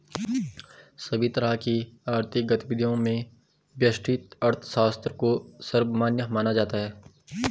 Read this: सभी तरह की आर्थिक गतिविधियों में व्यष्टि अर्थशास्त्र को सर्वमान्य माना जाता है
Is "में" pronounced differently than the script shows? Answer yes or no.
no